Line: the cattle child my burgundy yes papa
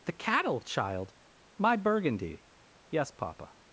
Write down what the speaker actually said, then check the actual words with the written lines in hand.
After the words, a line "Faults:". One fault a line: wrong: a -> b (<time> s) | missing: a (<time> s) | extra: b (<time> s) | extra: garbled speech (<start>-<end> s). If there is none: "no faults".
the cattle child my burgundy yes papa
Faults:
no faults